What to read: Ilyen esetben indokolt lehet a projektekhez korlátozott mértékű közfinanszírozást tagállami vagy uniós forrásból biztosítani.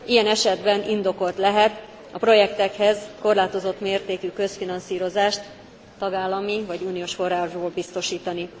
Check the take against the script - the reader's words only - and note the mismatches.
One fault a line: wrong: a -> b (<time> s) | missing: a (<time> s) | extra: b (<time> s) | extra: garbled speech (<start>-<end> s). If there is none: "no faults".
no faults